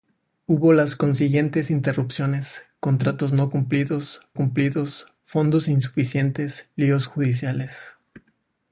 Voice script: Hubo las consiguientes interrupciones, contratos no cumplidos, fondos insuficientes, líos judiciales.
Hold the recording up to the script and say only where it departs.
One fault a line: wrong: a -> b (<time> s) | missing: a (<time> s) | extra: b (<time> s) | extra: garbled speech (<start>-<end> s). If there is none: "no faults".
extra: cumplidos (4.4 s)